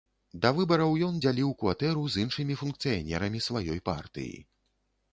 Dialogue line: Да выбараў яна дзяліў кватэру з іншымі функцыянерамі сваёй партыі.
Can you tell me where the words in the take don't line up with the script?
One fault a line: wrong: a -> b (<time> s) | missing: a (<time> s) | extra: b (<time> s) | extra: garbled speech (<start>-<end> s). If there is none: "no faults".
wrong: яна -> ён (1.1 s)